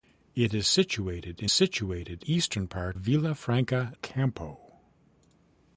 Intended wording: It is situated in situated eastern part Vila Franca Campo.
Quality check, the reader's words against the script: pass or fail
pass